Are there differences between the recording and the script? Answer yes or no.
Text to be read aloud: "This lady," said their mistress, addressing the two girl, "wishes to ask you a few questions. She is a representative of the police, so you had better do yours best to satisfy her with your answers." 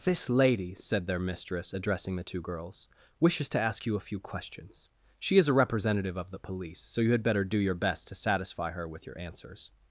yes